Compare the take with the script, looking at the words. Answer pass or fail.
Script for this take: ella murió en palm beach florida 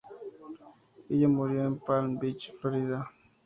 pass